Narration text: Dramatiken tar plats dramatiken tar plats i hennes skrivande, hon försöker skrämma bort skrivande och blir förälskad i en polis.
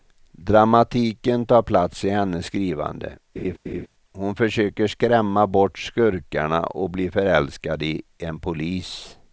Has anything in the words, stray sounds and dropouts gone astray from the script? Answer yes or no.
yes